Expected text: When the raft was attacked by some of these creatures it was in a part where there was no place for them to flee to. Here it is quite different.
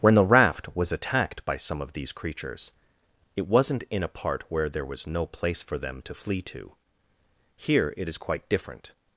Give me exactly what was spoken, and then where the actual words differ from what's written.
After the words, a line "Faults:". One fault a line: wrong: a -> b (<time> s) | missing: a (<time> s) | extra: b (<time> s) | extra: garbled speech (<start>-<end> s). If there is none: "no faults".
When the raft was attacked by some of these creatures it wasn't in a part where there was no place for them to flee to. Here it is quite different.
Faults:
wrong: was -> wasn't (3.5 s)